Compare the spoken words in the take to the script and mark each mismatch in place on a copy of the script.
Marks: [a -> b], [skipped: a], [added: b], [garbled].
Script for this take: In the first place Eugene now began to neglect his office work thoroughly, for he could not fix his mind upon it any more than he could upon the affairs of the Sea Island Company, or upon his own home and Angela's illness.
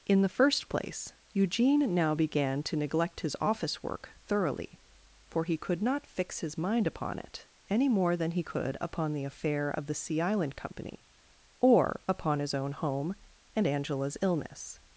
In the first place Eugene now began to neglect his office work thoroughly, for he could not fix his mind upon it any more than he could upon the [affairs -> affair] of the Sea Island Company, or upon his own home and Angela's illness.